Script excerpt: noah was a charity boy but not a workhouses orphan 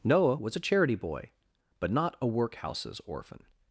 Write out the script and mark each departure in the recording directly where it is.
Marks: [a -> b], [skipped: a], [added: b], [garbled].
noah was a charity boy but not a workhouses orphan